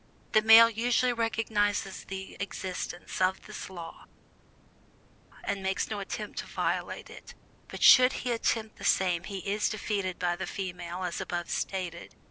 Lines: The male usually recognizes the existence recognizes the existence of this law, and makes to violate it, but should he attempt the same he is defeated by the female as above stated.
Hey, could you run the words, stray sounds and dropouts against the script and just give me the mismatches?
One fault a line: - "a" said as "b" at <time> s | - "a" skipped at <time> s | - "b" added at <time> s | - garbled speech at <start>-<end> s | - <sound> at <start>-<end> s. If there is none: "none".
- "recognizes the existence" skipped at 3.2 s
- "no attempt" added at 5.9 s